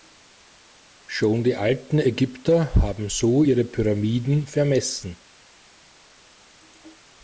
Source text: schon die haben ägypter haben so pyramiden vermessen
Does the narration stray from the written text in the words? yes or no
yes